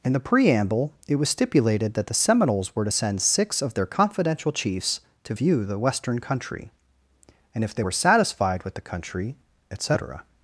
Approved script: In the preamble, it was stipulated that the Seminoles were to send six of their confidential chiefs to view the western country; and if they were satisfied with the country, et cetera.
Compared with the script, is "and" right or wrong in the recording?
right